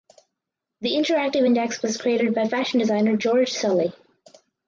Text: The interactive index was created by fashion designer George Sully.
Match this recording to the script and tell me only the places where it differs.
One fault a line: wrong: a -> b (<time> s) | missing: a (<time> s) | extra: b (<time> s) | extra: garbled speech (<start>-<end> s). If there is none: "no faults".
no faults